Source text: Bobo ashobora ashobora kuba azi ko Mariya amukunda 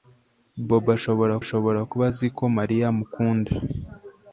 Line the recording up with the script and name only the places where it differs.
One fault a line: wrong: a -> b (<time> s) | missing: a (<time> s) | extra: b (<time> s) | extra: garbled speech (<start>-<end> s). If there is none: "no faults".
no faults